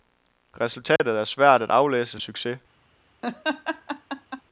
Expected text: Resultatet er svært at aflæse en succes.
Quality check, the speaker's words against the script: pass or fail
pass